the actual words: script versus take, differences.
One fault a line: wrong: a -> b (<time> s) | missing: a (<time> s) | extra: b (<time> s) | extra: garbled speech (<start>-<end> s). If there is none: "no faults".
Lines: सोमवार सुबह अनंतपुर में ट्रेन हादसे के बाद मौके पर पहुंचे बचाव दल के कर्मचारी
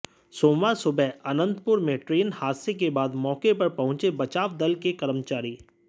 no faults